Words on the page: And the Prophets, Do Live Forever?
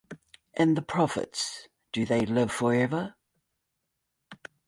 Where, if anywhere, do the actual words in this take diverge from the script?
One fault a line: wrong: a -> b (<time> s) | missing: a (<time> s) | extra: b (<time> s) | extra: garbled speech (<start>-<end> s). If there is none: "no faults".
extra: They (2.1 s)